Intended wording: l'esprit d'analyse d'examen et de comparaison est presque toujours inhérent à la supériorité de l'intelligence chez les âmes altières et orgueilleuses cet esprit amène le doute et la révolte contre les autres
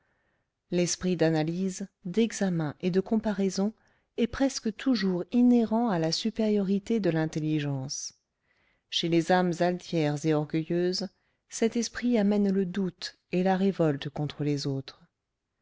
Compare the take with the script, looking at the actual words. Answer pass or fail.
pass